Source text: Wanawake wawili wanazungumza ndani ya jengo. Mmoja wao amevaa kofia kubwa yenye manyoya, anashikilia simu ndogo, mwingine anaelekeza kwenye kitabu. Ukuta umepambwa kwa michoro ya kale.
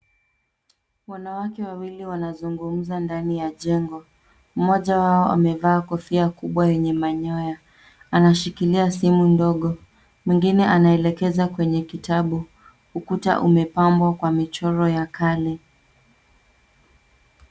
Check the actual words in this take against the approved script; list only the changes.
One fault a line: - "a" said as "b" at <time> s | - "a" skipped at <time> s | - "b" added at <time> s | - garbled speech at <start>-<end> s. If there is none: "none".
none